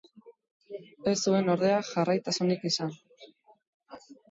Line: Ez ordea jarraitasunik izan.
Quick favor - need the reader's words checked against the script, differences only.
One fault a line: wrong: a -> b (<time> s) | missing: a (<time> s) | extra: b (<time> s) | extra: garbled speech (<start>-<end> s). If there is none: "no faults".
extra: zuen (1.2 s)